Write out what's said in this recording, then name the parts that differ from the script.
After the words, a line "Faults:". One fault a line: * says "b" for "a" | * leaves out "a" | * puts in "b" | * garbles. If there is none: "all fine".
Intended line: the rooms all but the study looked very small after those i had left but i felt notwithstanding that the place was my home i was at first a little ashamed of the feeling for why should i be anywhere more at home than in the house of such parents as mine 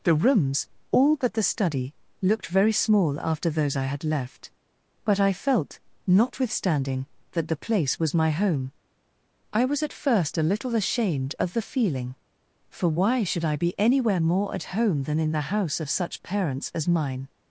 the rooms all but the study looked very small after those i had left but i felt notwithstanding that the place was my home i was at first a little ashamed of the feeling for why should i be anywhere more at home than in the house of such parents as mine
Faults:
all fine